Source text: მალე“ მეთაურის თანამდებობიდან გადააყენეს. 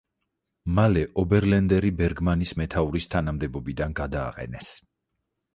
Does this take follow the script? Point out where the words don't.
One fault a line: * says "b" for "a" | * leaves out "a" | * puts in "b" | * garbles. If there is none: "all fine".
* puts in "ობერლენდერი ბერგმანის"